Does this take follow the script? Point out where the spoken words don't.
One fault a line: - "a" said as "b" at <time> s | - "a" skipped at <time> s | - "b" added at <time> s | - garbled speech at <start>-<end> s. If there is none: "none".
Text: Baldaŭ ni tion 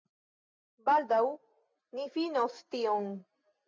- "finos" added at 2.2 s